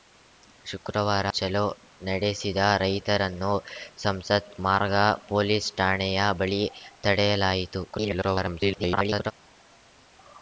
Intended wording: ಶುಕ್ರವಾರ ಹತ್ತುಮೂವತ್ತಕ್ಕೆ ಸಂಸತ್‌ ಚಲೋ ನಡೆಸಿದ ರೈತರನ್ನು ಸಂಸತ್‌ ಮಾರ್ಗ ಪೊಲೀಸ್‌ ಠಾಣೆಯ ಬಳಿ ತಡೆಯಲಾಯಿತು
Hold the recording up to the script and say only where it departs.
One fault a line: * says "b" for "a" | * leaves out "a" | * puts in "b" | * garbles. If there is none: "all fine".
* leaves out "ಹತ್ತುಮೂವತ್ತಕ್ಕೆ ಸಂಸತ್"
* garbles